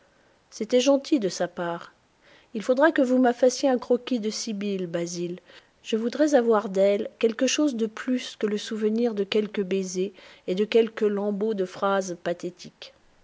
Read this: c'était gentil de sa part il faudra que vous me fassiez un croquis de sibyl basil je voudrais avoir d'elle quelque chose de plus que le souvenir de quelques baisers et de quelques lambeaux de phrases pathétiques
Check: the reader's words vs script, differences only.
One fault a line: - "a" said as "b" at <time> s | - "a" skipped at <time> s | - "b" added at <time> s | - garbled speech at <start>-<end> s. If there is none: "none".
none